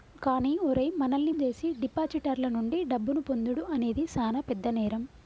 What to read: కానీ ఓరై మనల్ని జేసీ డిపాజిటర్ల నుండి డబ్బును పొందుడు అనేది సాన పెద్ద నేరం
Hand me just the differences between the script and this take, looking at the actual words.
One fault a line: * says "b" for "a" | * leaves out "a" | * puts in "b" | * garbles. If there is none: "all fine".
all fine